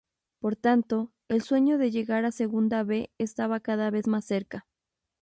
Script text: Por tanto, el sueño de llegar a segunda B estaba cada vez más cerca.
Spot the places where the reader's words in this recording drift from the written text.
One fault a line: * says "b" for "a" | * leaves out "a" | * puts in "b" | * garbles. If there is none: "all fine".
all fine